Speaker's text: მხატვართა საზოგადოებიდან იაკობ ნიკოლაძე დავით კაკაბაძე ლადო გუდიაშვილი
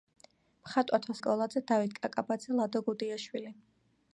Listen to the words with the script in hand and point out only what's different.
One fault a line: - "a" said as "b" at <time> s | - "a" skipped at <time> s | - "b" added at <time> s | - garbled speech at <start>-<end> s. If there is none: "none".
- "საზოგადოებიდან იაკობ" skipped at 1.1 s